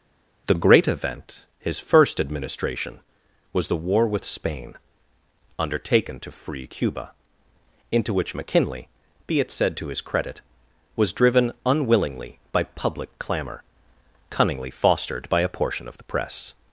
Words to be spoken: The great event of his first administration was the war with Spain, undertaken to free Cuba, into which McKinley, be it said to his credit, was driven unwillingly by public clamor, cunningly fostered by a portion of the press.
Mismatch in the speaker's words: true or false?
true